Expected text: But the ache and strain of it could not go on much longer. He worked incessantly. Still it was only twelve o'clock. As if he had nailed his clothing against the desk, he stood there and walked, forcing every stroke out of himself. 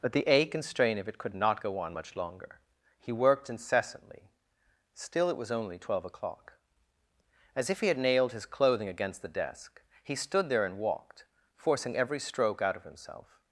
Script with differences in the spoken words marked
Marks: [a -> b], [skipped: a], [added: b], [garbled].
But the ache and strain of it could not go on much longer. He worked incessantly. Still it was only twelve o'clock. As if he had nailed his clothing against the desk, he stood there and walked, forcing every stroke out of himself.